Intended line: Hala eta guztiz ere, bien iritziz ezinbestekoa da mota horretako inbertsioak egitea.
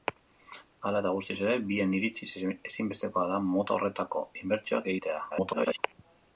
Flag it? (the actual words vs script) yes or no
yes